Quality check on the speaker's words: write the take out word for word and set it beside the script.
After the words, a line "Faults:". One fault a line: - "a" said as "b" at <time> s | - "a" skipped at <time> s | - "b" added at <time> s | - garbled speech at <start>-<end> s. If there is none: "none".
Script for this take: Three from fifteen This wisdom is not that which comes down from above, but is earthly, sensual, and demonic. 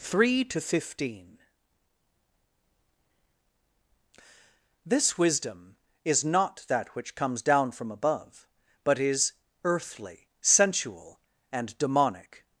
Three to fifteen This wisdom is not that which comes down from above, but is earthly, sensual, and demonic.
Faults:
- "from" said as "to" at 0.5 s